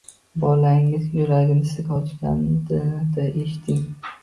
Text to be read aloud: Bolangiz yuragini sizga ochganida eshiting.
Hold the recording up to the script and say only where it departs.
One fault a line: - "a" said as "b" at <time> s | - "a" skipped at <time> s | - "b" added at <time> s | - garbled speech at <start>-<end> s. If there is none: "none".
none